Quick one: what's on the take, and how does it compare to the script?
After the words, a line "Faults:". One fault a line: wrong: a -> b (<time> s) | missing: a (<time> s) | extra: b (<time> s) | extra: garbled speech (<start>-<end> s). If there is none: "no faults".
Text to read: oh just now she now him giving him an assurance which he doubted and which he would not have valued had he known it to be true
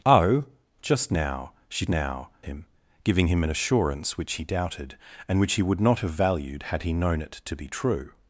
oh just now she now him giving him an assurance which he doubted and which he would not have valued had he known it to be true
Faults:
no faults